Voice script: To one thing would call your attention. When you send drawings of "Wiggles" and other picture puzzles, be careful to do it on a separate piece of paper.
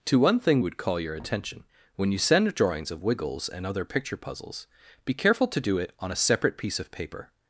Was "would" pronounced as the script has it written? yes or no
yes